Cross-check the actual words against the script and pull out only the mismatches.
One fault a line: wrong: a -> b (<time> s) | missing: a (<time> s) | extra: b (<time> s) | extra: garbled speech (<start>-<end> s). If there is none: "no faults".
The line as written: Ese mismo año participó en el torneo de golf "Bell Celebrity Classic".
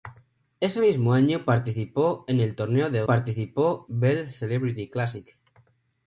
wrong: golf -> participó (3.1 s)